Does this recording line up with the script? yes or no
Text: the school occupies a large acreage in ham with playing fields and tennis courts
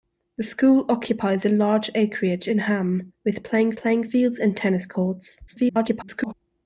no